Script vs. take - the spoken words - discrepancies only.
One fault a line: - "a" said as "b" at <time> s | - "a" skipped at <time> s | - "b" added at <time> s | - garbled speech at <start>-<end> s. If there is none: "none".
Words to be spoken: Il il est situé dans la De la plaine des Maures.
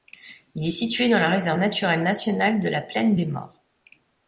- "il" skipped at 0.7 s
- "Réserve naturelle nationale" added at 1.3 s